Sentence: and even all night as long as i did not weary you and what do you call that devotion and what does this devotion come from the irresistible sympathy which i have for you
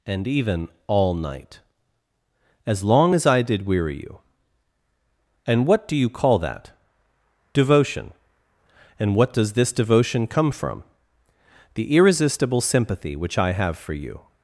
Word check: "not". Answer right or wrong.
wrong